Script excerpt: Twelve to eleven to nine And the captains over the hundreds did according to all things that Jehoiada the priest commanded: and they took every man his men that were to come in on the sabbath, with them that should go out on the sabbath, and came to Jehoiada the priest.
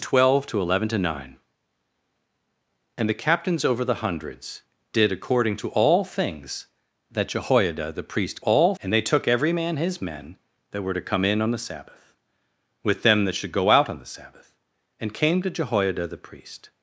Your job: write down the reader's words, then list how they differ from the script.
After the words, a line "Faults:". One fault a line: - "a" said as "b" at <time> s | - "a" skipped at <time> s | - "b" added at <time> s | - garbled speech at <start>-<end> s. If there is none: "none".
Twelve to eleven to nine And the captains over the hundreds did according to all things that Jehoiada the priest all: and they took every man his men that were to come in on the sabbath, with them that should go out on the sabbath, and came to Jehoiada the priest.
Faults:
- "commanded" said as "all" at 8.4 s